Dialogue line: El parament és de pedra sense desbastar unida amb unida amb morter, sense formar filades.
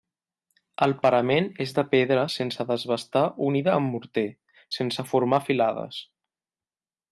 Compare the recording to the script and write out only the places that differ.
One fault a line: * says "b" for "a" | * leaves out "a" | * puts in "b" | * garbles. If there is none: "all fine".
* leaves out "unida amb"